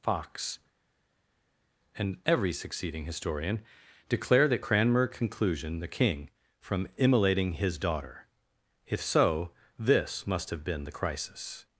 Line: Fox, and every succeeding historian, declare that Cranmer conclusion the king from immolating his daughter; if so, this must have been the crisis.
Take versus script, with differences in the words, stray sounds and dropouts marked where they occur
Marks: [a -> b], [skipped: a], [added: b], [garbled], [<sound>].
Fox, and every succeeding historian, declare that Cranmer conclusion the king from immolating his daughter; if so, this must have been the crisis.